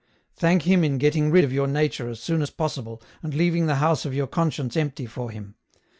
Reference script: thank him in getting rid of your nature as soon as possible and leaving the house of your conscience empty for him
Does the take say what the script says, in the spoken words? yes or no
yes